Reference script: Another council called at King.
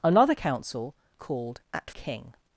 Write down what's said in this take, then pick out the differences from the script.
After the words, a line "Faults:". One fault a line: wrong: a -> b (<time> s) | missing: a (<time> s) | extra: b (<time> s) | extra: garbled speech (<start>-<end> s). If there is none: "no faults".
Another council called at King.
Faults:
no faults